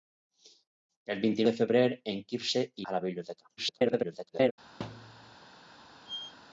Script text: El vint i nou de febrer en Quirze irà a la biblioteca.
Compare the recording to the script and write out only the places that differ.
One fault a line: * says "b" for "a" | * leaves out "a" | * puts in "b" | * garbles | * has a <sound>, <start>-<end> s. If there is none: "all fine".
* leaves out "nou"
* leaves out "irà"
* garbles
* has a thud, 4.8-5.4 s
* has a squeak, 6.1-6.4 s